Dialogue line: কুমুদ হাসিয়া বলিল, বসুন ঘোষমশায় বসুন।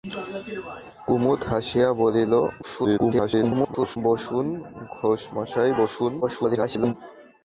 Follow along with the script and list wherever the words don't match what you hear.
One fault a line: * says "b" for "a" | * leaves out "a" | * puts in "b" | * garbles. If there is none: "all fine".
* garbles
* garbles